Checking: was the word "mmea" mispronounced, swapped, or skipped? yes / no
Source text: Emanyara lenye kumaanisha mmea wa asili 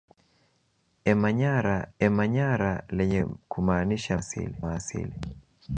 yes